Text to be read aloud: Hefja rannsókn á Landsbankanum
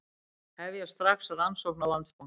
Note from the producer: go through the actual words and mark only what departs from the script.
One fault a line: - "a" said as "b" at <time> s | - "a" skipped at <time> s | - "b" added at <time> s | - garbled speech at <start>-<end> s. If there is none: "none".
- "strax" added at 0.9 s